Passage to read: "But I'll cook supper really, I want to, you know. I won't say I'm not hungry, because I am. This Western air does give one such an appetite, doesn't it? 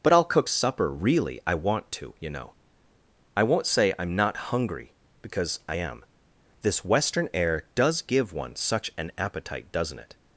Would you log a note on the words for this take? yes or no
no